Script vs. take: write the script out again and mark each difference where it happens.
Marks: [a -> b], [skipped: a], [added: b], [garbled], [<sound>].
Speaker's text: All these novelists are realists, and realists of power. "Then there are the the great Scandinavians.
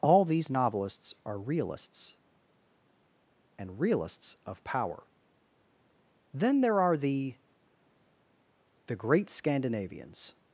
All these novelists are realists, and realists of power. "Then there are the the great Scandinavians.